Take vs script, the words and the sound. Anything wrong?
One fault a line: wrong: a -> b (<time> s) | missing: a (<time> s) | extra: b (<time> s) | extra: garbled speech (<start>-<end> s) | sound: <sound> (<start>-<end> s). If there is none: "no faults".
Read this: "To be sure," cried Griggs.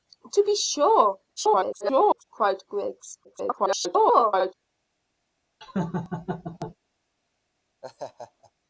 extra: garbled speech (1.4-2.2 s)
extra: garbled speech (3.2-4.5 s)
sound: laugh (5.6-6.8 s)
sound: laugh (7.8-8.5 s)